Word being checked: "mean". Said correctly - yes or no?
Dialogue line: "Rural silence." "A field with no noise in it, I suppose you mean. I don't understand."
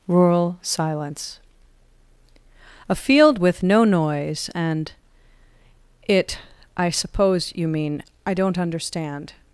yes